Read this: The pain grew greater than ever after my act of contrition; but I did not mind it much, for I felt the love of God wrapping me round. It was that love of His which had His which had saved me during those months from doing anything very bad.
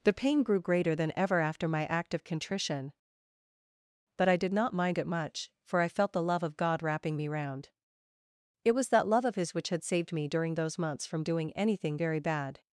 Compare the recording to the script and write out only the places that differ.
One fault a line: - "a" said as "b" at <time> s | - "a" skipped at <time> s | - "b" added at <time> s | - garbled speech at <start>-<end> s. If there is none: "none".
- "His which had" skipped at 9.8 s